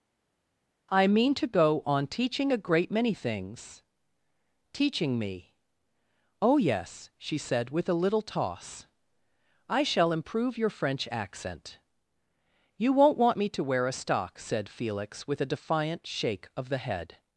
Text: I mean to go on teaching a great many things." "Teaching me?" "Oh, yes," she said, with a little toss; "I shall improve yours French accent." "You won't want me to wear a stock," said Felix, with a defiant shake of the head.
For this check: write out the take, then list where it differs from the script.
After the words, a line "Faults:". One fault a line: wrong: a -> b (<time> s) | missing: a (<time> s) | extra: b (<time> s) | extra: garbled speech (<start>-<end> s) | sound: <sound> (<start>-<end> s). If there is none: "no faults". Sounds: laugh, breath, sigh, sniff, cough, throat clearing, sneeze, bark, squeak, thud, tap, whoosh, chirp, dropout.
I mean to go on teaching a great many things." "Teaching me?" "Oh, yes," she said, with a little toss; "I shall improve your French accent." "You won't want me to wear a stock," said Felix, with a defiant shake of the head.
Faults:
wrong: yours -> your (10.6 s)